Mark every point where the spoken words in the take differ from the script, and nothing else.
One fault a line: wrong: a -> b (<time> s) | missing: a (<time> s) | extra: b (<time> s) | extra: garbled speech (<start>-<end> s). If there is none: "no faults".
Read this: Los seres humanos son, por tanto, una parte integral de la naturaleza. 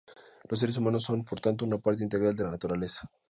no faults